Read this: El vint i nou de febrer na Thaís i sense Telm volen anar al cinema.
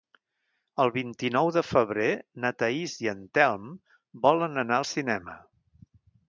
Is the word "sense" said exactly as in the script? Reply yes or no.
no